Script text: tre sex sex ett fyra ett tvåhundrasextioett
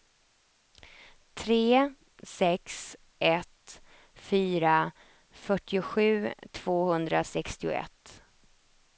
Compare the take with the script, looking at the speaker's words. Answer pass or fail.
fail